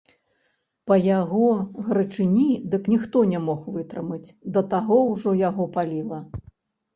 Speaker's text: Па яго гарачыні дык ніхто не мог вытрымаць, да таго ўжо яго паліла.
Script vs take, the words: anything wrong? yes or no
no